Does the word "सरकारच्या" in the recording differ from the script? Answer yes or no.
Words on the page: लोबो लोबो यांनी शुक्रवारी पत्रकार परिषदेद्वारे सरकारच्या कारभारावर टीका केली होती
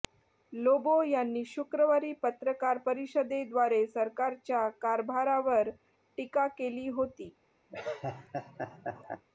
no